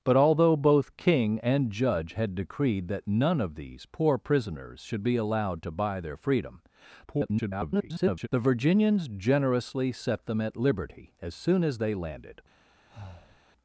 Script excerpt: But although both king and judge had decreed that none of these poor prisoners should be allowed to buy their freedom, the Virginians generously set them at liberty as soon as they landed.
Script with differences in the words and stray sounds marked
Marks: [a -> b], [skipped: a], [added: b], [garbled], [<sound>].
But although both king and judge had decreed that none of these poor prisoners should be allowed to buy their freedom, [garbled] the Virginians generously set them at liberty as soon as they landed. [breath]